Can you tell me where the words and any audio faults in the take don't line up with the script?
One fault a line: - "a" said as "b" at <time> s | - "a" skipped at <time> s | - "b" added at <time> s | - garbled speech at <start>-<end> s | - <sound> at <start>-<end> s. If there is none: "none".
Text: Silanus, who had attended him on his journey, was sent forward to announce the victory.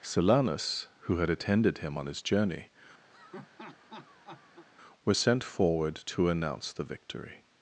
- laugh at 3.1-4.7 s